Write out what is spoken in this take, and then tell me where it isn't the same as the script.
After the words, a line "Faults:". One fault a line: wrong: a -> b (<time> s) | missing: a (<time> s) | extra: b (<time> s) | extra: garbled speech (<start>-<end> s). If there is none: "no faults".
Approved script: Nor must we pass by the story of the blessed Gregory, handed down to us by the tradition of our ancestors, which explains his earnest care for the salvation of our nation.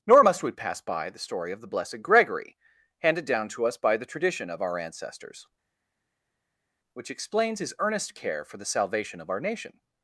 Nor must we pass by the story of the blessed Gregory, handed down to us by the tradition of our ancestors, which explains his earnest care for the salvation of our nation.
Faults:
no faults